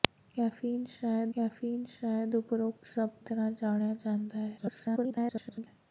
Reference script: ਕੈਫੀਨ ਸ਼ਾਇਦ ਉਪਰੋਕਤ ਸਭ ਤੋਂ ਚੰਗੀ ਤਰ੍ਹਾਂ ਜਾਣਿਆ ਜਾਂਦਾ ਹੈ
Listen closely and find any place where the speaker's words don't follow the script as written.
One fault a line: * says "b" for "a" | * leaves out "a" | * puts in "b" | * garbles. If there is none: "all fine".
* puts in "ਕੈਫੀਨ ਸ਼ਾਇਦ"
* leaves out "ਤੋਂ ਚੰਗੀ"
* garbles